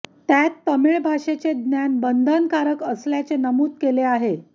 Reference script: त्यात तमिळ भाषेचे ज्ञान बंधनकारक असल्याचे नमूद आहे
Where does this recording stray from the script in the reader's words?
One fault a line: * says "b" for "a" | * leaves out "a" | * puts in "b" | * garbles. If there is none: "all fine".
* puts in "केले"